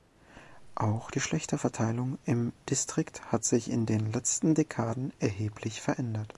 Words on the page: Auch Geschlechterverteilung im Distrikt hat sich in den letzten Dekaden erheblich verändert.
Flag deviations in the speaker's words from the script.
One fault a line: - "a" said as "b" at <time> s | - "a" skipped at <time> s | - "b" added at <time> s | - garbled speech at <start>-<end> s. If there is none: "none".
none